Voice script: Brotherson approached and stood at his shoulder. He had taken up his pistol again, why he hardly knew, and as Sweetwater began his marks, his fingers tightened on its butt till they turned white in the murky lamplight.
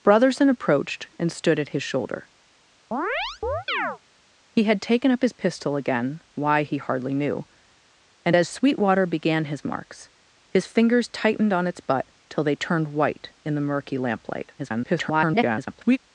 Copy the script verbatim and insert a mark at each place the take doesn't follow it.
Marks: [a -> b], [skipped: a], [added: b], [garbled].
Brotherson approached and stood at his shoulder. He had taken up his pistol again, why he hardly knew, and as Sweetwater began his marks, his fingers tightened on its butt till they turned white in the murky lamplight. [garbled]